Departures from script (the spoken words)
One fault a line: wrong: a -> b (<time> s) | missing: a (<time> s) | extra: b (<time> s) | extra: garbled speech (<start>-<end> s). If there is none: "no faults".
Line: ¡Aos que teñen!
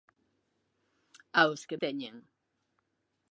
no faults